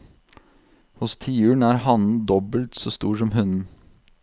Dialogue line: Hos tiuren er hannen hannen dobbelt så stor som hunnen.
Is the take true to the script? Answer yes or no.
no